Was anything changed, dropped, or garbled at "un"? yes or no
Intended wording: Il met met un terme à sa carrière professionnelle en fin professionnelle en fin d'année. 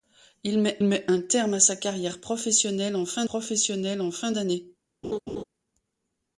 no